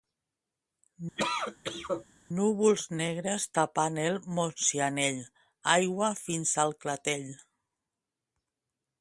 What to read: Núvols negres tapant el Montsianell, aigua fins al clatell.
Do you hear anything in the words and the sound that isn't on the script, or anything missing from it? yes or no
yes